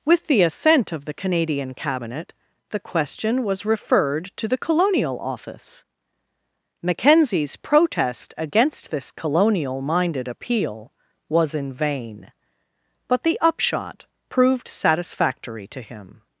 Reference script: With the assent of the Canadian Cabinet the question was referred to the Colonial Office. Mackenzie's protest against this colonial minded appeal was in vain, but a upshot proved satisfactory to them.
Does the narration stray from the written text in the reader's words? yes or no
yes